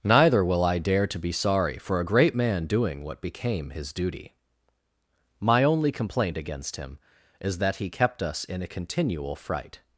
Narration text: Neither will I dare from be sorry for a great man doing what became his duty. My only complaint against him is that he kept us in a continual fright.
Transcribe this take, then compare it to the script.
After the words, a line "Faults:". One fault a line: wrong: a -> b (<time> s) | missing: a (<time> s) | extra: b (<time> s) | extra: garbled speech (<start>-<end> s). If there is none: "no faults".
Neither will I dare to be sorry for a great man doing what became his duty. My only complaint against him is that he kept us in a continual fright.
Faults:
wrong: from -> to (1.1 s)